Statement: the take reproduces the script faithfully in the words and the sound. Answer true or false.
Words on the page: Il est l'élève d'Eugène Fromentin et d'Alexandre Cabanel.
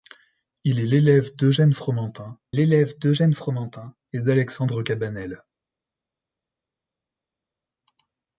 false